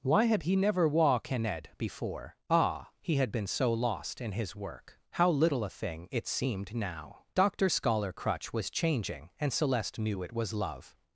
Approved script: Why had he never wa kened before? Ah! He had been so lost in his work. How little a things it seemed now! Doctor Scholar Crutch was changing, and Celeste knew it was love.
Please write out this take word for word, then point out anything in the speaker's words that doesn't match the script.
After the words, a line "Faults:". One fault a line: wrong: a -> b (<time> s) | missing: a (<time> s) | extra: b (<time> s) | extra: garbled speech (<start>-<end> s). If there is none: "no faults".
Why had he never wa kened before? Ah! He had been so lost in his work. How little a thing it seemed now! Doctor Scholar Crutch was changing, and Celeste knew it was love.
Faults:
wrong: things -> thing (5.7 s)